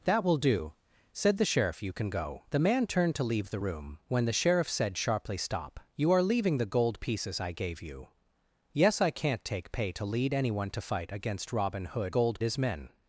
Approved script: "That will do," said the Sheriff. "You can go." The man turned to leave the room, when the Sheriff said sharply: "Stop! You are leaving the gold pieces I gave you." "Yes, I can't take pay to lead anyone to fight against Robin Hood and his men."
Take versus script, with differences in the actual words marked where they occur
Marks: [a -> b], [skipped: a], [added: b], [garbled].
"That will do," said the Sheriff. "You can go." The man turned to leave the room, when the Sheriff said sharply: "Stop! You are leaving the gold pieces I gave you." "Yes, I can't take pay to lead anyone to fight against Robin Hood [and -> gold] his men."